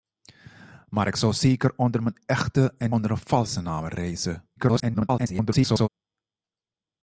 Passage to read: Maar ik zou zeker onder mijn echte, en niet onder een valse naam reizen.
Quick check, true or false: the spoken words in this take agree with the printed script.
false